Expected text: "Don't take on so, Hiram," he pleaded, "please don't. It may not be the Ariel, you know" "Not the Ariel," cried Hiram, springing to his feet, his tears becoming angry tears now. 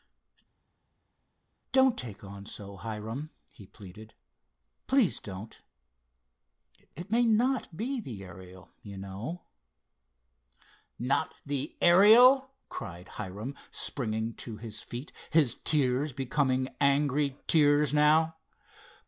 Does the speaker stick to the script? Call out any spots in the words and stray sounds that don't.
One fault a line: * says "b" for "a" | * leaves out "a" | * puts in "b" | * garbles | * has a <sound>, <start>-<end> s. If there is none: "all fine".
all fine